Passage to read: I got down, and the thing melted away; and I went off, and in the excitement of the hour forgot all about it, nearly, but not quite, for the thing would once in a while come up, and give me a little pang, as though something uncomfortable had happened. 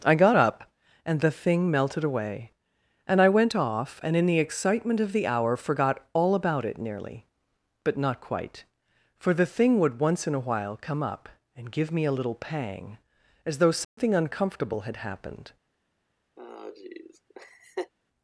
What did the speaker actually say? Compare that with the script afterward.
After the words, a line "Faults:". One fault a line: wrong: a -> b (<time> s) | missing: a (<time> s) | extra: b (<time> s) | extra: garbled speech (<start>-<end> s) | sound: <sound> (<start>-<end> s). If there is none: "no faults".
I got up, and the thing melted away; and I went off, and in the excitement of the hour forgot all about it, nearly, but not quite, for the thing would once in a while come up, and give me a little pang, as though something uncomfortable had happened.
Faults:
wrong: down -> up (0.3 s)
sound: dropout (13.8-14.0 s)
sound: laugh (16.4-17.9 s)